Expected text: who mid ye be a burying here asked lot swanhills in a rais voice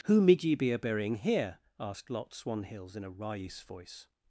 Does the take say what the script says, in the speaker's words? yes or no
yes